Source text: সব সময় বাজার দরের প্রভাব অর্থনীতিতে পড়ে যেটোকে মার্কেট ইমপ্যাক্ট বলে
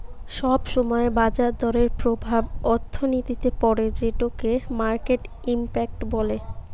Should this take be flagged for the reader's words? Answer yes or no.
no